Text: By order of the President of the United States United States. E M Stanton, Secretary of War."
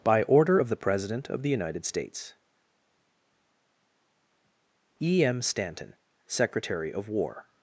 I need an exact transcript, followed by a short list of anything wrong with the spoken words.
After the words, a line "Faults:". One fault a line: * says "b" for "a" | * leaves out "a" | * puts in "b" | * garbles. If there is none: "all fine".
By order of the President of the United States. E M Stanton, Secretary of War."
Faults:
* leaves out "United States"